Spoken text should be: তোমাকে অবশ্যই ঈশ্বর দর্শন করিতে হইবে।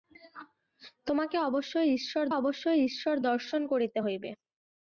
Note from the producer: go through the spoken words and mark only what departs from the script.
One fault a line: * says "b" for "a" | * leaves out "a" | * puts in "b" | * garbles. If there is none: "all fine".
* puts in "অবশ্যই ঈশ্বর"